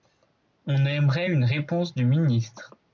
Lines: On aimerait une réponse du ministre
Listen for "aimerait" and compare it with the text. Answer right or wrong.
right